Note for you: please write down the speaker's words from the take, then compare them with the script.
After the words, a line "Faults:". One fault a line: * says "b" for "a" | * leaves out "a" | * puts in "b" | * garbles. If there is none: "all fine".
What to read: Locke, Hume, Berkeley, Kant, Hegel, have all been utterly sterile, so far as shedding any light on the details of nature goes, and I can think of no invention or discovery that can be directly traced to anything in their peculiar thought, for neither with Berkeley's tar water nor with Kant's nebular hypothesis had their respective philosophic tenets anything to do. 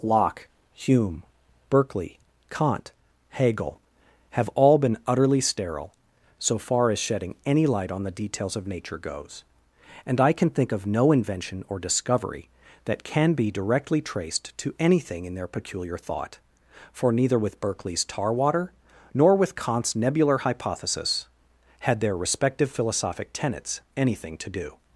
Locke, Hume, Berkeley, Kant, Hegel, have all been utterly sterile, so far as shedding any light on the details of nature goes, and I can think of no invention or discovery that can be directly traced to anything in their peculiar thought, for neither with Berkeley's tar water nor with Kant's nebular hypothesis had their respective philosophic tenets anything to do.
Faults:
all fine